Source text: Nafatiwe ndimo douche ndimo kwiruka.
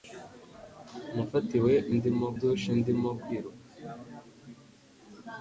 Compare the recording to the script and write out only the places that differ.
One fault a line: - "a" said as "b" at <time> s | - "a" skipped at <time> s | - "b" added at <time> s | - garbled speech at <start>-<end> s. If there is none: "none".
none